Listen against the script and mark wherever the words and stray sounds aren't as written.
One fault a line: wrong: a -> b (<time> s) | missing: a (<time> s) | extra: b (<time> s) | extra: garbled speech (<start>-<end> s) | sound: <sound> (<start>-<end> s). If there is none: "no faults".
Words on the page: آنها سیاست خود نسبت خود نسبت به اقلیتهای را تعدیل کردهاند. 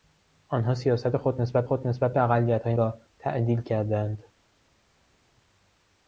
no faults